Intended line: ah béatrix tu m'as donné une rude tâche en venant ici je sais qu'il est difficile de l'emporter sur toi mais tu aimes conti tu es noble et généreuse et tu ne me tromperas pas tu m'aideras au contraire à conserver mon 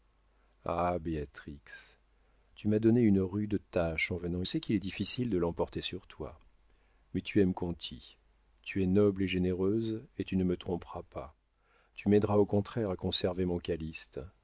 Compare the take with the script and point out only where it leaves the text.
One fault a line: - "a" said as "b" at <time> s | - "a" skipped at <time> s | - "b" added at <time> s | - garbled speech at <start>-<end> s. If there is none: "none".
- "ici je" skipped at 4.4 s